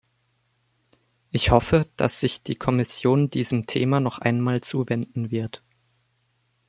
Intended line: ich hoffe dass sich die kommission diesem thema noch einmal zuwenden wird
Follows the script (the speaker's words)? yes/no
yes